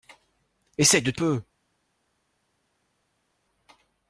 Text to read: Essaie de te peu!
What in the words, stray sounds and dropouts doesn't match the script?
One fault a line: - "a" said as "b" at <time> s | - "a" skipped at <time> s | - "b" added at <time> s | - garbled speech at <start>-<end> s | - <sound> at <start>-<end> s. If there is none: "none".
none